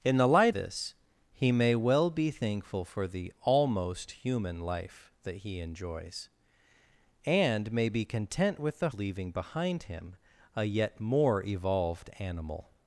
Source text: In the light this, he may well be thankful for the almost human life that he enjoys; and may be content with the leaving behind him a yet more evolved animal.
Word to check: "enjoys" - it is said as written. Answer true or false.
true